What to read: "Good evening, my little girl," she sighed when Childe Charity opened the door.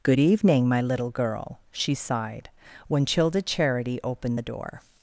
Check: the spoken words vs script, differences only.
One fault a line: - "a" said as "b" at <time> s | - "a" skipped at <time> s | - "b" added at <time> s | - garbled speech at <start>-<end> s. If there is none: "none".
none